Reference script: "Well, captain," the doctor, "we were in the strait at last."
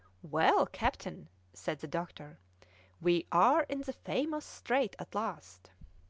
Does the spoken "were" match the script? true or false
false